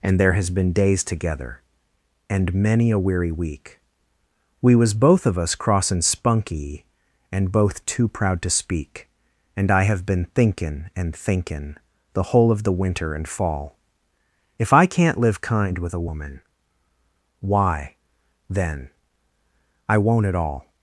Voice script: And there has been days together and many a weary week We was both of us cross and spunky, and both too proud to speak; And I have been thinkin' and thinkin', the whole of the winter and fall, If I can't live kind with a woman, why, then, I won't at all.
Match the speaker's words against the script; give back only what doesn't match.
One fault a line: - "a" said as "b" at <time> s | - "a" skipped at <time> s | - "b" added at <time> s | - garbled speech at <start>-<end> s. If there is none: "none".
none